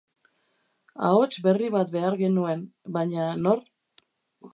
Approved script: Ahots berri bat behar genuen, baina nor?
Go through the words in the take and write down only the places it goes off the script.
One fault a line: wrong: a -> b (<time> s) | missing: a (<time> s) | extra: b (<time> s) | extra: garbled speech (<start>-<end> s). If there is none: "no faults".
no faults